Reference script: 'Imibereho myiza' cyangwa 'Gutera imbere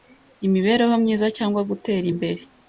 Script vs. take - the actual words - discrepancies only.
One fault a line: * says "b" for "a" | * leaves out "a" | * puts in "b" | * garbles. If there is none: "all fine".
all fine